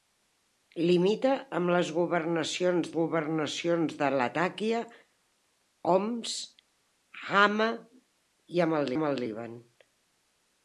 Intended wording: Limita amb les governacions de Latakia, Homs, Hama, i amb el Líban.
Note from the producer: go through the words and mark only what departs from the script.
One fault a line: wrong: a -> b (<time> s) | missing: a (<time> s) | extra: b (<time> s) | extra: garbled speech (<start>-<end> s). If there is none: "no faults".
extra: governacions (3.0 s)
extra: amb el (9.0 s)